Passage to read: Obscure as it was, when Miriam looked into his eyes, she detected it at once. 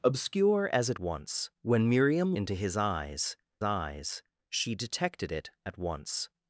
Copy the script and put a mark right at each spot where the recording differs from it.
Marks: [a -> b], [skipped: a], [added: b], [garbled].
Obscure as it [was, -> once] when Miriam [skipped: looked] into his eyes, [added: eyes] she detected it at once.